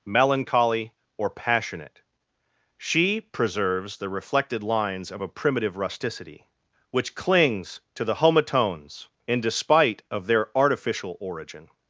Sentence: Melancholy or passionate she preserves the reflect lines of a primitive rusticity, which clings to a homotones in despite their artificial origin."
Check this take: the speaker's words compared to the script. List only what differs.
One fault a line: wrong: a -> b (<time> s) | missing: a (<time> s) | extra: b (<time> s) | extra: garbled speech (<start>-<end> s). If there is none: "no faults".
wrong: reflect -> reflected (4.1 s)
wrong: a -> the (8.0 s)
extra: of (10.1 s)